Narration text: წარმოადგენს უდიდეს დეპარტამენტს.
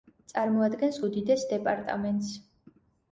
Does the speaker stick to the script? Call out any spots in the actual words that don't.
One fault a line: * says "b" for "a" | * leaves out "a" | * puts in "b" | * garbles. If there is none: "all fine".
all fine